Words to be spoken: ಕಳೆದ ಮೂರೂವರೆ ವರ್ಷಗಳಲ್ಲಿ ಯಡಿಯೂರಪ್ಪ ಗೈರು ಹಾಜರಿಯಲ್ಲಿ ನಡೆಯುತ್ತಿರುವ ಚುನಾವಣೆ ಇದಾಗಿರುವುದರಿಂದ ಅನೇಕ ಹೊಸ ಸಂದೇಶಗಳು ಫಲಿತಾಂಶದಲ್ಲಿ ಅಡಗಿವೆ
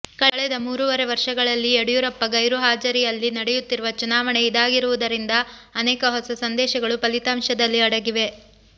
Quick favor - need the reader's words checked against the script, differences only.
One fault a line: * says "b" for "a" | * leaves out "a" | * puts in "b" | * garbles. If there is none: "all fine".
all fine